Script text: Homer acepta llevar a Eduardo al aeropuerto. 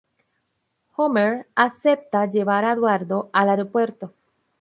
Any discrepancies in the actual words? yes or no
no